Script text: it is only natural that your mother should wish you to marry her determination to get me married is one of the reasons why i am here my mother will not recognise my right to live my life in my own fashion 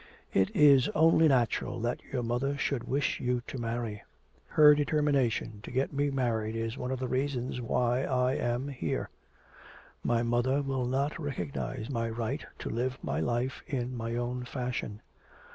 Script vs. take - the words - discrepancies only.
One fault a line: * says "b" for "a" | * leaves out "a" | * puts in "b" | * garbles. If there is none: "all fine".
all fine